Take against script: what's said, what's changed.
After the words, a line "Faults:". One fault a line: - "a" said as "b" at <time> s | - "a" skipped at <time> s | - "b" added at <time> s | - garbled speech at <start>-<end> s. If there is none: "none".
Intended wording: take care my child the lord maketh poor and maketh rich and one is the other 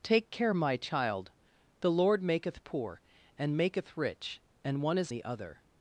take care my child the lord maketh poor and maketh rich and one is the other
Faults:
none